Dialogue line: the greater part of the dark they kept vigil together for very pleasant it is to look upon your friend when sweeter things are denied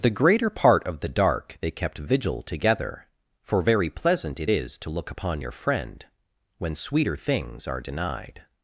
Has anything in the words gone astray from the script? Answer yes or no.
no